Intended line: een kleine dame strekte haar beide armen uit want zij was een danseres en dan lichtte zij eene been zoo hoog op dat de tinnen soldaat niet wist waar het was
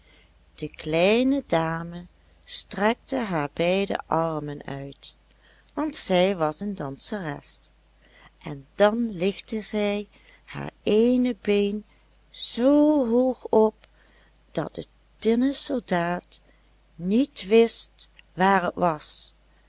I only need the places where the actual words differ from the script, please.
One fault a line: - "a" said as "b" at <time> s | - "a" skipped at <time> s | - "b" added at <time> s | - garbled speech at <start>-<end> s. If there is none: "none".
- "een" said as "de" at 0.6 s
- "haar" added at 10.5 s